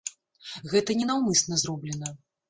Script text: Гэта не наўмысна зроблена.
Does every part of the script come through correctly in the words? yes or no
yes